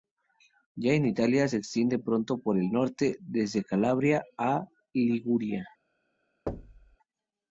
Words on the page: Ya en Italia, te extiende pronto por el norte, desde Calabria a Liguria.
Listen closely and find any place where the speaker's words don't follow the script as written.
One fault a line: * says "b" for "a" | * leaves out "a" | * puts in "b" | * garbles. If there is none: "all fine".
* says "se" for "te"